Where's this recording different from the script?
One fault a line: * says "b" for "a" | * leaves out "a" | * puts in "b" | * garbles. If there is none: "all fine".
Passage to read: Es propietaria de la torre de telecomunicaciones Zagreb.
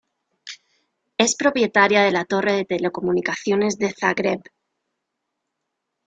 * puts in "de"